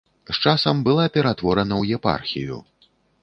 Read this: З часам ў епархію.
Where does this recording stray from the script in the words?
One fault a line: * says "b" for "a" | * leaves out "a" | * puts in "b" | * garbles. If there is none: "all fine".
* puts in "была ператворана"